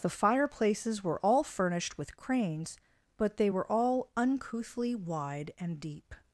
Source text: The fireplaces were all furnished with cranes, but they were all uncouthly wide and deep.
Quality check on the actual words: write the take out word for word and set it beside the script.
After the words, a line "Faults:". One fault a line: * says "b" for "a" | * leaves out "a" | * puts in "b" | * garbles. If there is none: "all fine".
The fireplaces were all furnished with cranes, but they were all uncouthly wide and deep.
Faults:
all fine